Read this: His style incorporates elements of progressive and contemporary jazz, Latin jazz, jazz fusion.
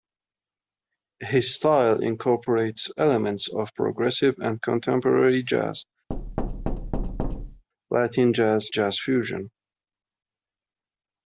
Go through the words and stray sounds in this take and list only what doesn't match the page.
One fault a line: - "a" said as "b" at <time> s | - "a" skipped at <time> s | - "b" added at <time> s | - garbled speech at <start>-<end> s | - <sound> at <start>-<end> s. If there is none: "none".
- thud at 6.1-7.6 s